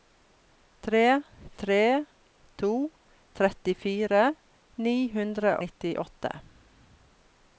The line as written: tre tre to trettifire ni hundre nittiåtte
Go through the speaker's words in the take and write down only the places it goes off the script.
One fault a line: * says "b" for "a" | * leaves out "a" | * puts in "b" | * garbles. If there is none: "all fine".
all fine